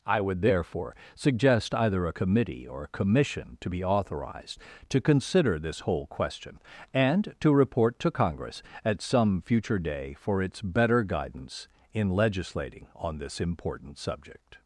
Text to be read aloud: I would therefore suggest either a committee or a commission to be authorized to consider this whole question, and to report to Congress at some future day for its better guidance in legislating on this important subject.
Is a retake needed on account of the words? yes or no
no